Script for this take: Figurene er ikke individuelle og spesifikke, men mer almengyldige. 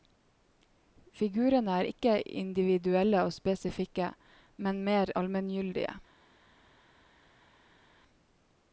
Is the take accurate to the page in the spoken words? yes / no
yes